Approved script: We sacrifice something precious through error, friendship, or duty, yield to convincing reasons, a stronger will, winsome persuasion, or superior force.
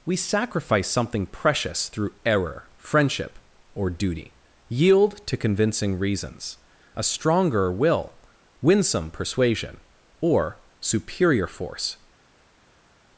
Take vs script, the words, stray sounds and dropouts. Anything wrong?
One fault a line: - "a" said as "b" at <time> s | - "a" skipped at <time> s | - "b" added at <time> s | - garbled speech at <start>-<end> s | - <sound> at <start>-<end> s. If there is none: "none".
none